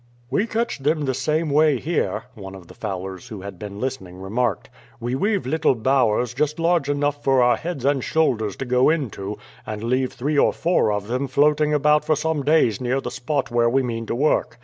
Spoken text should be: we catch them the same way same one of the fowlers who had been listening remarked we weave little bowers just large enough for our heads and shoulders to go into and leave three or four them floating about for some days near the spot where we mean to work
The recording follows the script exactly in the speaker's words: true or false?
false